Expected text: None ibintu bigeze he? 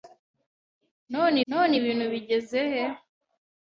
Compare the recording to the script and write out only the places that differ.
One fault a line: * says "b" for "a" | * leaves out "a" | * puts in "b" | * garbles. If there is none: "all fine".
* puts in "none"